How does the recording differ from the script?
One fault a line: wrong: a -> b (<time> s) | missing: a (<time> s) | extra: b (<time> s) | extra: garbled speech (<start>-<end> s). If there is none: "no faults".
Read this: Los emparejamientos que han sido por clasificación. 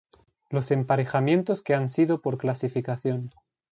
no faults